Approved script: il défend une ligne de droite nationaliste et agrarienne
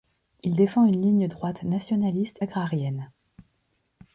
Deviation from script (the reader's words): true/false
true